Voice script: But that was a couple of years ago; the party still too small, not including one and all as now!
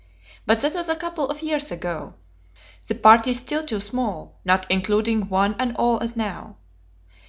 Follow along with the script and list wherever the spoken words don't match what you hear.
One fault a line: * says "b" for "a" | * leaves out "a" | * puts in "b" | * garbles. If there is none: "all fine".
all fine